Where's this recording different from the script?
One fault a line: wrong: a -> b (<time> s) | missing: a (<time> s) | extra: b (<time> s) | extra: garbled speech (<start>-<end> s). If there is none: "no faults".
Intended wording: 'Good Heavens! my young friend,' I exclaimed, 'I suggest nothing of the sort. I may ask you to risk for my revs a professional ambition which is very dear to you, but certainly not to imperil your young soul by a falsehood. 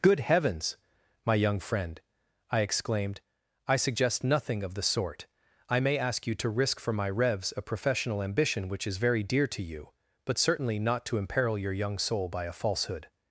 no faults